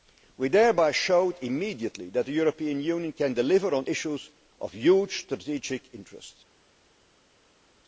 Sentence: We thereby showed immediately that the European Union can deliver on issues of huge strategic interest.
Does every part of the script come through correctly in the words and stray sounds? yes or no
yes